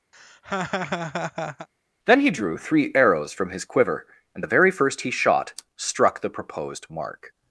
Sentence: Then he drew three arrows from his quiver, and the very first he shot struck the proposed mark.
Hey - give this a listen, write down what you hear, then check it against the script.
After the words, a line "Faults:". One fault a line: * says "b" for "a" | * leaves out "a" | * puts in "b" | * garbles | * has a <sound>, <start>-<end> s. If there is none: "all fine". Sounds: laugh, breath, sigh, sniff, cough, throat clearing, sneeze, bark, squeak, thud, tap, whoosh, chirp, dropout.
Then he drew three arrows from his quiver, and the very first he shot struck the proposed mark.
Faults:
* has a laugh, 0.1-1.7 s